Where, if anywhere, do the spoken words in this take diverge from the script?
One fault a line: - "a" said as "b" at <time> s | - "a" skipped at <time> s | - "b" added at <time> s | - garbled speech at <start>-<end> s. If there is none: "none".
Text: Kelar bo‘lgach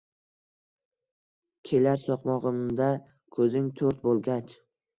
- "so‘qmog‘imda ko‘zing to‘rt" added at 2.0 s